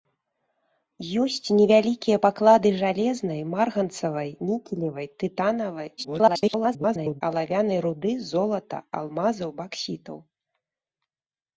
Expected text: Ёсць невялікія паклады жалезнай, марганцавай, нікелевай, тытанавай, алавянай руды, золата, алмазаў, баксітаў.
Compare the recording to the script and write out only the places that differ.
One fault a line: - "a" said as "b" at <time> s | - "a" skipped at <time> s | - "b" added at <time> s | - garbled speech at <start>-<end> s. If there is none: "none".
- garbled speech at 6.0-7.2 s